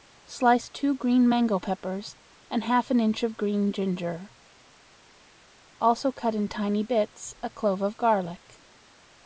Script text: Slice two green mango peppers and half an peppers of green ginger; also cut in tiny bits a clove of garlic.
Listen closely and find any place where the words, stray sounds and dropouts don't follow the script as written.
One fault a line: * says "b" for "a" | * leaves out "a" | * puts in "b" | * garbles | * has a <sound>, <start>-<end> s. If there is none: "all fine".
* says "inch" for "peppers"